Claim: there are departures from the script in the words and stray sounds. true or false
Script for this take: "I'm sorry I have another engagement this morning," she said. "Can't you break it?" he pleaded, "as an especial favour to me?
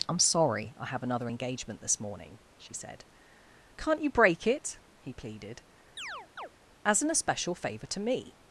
true